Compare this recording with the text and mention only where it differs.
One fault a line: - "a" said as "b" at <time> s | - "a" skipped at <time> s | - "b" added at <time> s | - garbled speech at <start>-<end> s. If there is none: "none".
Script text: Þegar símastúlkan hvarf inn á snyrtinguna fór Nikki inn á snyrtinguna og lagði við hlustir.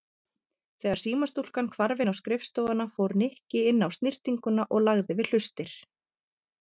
- "snyrtinguna" said as "skrifstofuna" at 2.2 s